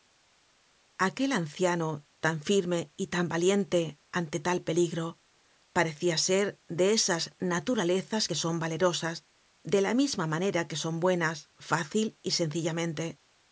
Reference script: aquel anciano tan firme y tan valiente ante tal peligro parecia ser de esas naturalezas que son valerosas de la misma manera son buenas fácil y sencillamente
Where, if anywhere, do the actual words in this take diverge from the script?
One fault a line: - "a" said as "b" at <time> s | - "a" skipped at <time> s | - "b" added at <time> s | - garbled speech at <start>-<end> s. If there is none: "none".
- "que" added at 10.7 s